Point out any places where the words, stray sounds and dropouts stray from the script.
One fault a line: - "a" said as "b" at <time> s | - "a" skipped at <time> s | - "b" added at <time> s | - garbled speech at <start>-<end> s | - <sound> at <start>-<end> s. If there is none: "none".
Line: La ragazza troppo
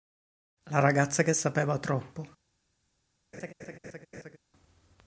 - "che sapeva" added at 1.2 s
- laugh at 3.3-4.4 s